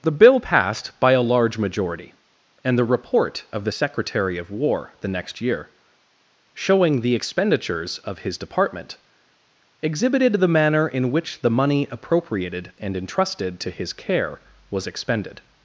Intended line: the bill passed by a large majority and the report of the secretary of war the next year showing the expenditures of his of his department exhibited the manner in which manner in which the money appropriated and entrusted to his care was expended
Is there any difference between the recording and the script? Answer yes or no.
yes